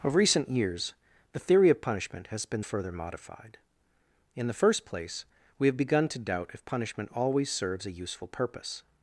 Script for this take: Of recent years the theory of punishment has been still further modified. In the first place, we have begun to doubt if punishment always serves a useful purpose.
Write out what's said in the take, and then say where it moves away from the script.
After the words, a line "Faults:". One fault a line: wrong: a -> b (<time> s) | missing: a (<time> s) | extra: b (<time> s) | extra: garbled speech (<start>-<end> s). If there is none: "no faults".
Of recent years the theory of punishment has been further modified. In the first place, we have begun to doubt if punishment always serves a useful purpose.
Faults:
missing: still (2.6 s)